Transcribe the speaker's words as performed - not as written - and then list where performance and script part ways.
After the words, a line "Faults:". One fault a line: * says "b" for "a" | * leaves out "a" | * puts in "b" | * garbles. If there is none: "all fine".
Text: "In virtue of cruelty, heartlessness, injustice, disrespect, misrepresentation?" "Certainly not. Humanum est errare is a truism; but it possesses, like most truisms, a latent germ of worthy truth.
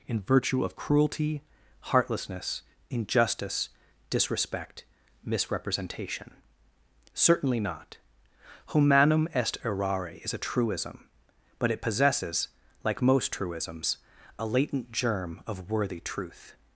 "In virtue of cruelty, heartlessness, injustice, disrespect, misrepresentation?" "Certainly not. Humanum est errare is a truism; but it possesses, like most truisms, a latent germ of worthy truth.
Faults:
all fine